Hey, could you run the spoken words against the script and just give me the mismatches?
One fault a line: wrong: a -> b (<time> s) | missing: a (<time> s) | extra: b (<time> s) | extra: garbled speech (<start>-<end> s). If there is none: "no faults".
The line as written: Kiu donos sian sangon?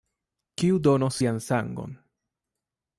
no faults